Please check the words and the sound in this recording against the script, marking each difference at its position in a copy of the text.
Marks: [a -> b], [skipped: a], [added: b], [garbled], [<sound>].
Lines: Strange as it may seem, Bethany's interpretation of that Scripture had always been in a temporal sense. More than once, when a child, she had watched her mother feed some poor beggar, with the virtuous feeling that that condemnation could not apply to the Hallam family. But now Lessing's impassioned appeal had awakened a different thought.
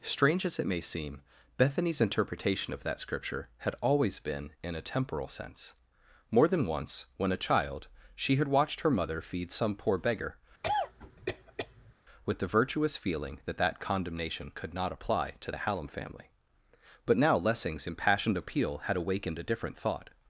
Strange as it may seem, Bethany's interpretation of that Scripture had always been in a temporal sense. More than once, when a child, she had watched her mother feed some poor beggar, [cough] with the virtuous feeling that that condemnation could not apply to the Hallam family. But now Lessing's impassioned appeal had awakened a different thought.